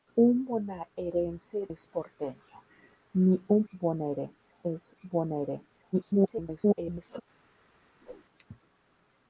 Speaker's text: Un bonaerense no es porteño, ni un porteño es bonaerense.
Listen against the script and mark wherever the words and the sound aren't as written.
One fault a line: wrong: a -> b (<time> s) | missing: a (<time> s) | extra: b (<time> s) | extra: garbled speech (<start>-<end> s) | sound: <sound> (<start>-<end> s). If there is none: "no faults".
missing: no (1.7 s)
wrong: porteño -> bonaerense (3.7 s)
extra: garbled speech (5.9-7.2 s)
sound: whoosh (8.0-8.3 s)